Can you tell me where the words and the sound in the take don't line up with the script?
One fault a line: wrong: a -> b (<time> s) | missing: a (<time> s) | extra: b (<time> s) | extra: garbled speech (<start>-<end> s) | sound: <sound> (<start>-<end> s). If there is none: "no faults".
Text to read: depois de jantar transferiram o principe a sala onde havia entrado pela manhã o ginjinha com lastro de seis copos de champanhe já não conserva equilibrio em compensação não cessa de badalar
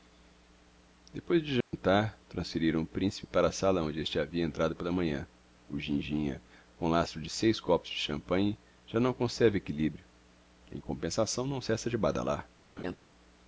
sound: dropout (1.6-1.7 s)
extra: para (3.3 s)
extra: este (4.0 s)
sound: laugh (12.8-13.0 s)